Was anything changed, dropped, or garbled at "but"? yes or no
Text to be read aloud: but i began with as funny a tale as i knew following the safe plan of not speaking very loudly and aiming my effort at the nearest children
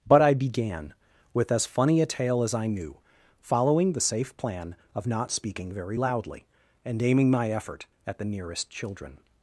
no